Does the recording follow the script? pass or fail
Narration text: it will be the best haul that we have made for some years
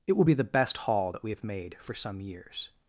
pass